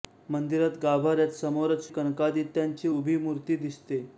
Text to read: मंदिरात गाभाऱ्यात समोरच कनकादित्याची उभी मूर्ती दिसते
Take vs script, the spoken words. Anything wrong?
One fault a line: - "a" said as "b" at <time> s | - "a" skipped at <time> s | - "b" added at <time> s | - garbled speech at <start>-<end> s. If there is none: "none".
none